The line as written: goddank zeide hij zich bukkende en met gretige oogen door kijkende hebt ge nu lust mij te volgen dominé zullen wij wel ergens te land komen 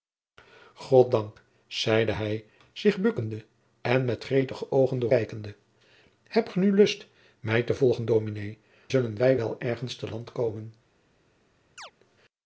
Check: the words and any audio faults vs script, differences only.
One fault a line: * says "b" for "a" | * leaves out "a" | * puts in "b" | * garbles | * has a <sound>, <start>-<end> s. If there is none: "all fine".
* has a chirp, 11.8-11.9 s